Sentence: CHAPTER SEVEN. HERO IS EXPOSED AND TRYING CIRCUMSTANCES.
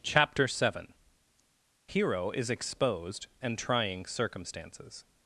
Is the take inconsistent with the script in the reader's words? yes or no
no